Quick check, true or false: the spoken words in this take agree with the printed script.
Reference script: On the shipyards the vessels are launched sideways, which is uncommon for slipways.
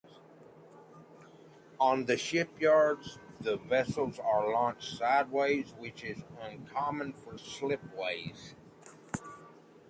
true